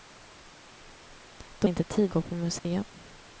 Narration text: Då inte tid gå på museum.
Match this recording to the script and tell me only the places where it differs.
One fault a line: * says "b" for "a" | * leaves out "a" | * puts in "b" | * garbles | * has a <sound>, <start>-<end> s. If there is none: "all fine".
* has a dropout, 2.6-2.6 s